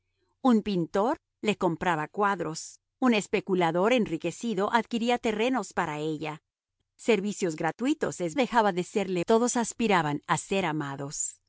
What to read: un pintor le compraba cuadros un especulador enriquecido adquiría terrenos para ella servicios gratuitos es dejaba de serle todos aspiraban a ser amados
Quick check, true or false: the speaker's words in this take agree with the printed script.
true